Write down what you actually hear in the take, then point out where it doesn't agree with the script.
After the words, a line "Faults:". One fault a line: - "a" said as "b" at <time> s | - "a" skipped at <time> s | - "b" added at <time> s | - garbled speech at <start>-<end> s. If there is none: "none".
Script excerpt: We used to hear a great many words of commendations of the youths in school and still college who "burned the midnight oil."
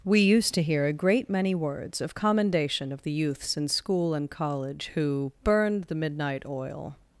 We used to hear a great many words of commendation of the youths in school and college who "burned the midnight oil."
Faults:
- "commendations" said as "commendation" at 2.1 s
- "still" skipped at 4.3 s